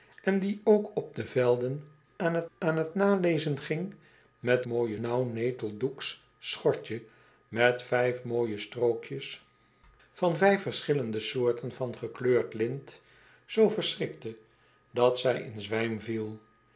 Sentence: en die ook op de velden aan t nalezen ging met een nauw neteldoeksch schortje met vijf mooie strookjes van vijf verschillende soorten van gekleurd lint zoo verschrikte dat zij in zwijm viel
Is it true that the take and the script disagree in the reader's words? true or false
true